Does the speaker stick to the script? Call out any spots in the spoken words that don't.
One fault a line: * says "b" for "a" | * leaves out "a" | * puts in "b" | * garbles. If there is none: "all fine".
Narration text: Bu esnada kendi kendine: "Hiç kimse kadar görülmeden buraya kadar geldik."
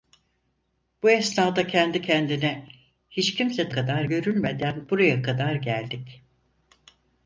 all fine